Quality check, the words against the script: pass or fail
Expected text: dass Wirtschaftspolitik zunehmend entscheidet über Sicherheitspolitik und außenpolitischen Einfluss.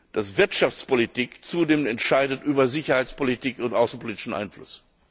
pass